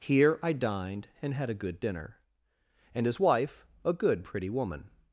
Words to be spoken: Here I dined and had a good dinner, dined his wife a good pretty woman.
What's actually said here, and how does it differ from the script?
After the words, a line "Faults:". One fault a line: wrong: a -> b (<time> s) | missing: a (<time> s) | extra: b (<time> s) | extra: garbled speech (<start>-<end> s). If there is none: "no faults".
Here I dined and had a good dinner, and his wife a good pretty woman.
Faults:
wrong: dined -> and (2.9 s)